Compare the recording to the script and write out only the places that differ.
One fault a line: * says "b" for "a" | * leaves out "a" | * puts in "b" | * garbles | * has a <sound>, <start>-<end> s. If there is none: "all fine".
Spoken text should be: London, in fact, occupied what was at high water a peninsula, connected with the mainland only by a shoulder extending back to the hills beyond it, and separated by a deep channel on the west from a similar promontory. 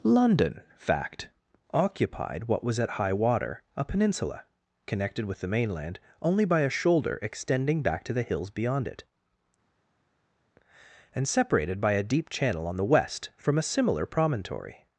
* leaves out "in"